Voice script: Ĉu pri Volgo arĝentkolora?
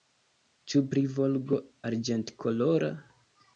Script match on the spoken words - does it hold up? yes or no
yes